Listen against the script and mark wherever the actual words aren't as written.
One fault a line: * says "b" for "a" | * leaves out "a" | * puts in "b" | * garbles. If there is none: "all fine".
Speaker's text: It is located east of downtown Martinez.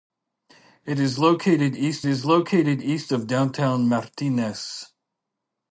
* puts in "is located east"